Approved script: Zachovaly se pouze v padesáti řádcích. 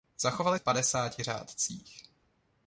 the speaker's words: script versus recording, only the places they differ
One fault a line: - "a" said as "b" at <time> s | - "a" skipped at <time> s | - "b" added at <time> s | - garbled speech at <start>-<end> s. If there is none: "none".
- "se pouze" skipped at 0.6 s